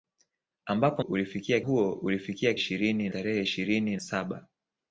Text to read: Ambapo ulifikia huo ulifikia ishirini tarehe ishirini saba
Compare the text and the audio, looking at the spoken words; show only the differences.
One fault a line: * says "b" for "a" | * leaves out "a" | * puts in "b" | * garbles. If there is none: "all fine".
all fine